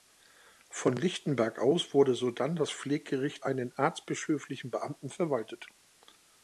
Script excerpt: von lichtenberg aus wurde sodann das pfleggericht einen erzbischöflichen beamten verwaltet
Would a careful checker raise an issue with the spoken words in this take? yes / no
no